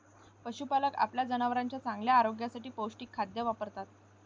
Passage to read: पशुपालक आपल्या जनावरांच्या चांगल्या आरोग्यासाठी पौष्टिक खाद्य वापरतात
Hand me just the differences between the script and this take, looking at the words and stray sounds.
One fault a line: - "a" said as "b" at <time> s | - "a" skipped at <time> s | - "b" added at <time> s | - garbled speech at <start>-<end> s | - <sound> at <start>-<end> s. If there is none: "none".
none